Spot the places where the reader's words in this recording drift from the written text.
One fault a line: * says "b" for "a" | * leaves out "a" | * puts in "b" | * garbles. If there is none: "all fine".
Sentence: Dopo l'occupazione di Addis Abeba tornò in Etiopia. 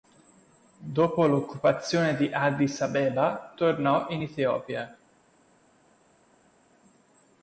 all fine